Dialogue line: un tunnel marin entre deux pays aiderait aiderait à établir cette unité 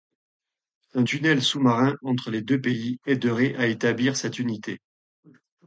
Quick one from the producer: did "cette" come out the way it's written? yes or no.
yes